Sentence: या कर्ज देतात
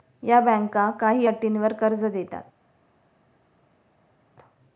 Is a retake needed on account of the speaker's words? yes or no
yes